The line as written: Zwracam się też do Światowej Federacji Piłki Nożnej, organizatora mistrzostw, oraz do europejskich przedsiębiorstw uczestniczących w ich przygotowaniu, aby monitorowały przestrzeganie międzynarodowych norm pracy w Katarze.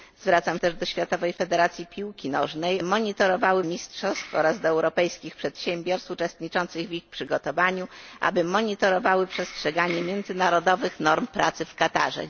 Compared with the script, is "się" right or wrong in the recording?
wrong